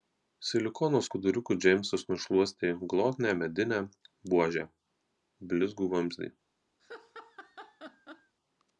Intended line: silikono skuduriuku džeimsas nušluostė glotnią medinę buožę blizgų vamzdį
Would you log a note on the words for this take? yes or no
no